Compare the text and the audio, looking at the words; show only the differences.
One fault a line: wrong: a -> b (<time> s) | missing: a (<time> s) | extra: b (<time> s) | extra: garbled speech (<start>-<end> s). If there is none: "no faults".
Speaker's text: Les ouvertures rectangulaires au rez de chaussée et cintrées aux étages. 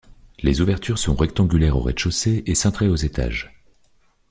extra: sont (1.0 s)